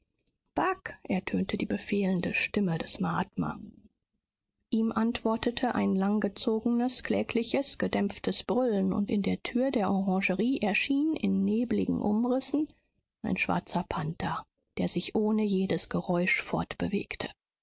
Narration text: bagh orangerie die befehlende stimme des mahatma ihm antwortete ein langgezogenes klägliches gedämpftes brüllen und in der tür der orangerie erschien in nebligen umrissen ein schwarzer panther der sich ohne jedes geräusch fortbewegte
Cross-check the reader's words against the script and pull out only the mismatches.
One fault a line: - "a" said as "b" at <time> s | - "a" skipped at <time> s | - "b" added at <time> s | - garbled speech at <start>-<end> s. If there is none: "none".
- "orangerie" said as "ertönte" at 1.0 s